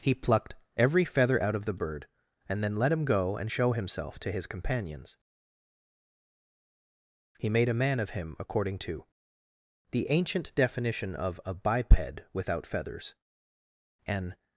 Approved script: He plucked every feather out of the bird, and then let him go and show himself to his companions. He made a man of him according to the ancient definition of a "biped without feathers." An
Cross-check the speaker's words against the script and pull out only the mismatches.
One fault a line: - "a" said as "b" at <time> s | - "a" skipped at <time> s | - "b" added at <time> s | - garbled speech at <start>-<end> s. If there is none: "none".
none